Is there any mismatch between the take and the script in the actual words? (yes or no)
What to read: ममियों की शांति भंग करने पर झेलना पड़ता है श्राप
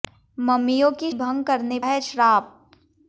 yes